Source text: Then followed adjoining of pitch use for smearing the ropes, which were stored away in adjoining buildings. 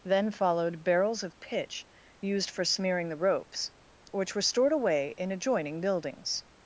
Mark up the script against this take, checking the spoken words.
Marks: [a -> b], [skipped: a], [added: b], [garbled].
Then followed [adjoining -> barrels] of pitch [use -> used] for smearing the ropes, which were stored away in adjoining buildings.